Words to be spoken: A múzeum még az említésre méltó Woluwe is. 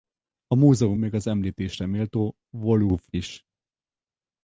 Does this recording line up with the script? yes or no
yes